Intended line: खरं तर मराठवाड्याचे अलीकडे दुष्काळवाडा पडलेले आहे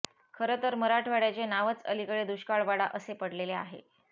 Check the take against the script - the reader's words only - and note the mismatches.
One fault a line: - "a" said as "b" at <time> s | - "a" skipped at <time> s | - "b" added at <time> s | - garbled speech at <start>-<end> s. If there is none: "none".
- "नावच" added at 1.4 s
- "असे" added at 2.9 s